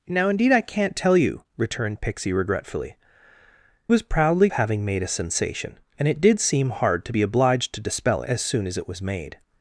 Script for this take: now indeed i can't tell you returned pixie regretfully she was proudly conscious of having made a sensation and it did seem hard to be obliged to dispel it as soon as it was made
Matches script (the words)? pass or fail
fail